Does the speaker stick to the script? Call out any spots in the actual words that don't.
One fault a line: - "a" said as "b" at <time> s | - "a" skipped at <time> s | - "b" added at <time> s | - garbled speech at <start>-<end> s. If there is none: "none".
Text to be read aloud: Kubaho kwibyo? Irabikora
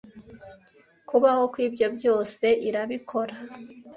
- "byose" added at 2.0 s